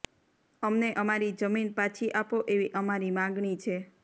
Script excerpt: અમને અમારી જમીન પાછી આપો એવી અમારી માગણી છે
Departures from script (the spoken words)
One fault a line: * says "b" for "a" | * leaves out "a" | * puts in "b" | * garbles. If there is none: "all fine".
all fine